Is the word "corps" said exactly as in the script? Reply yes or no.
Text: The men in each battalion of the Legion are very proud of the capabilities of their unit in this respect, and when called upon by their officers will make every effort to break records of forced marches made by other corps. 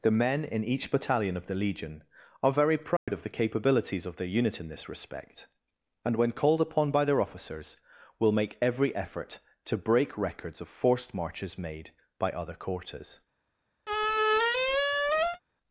no